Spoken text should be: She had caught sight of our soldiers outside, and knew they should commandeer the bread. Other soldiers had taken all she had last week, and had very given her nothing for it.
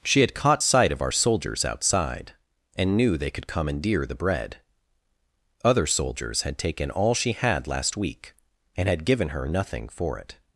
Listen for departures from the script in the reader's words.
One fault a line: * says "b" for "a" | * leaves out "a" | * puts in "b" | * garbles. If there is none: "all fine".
* says "could" for "should"
* leaves out "very"